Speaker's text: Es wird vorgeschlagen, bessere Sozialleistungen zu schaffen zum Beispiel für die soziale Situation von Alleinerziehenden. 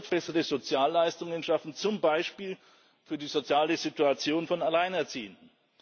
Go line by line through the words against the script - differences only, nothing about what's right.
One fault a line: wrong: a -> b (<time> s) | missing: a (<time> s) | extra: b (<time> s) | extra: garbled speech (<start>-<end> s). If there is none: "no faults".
missing: wird vorgeschlagen (0.1 s)
missing: zu (1.4 s)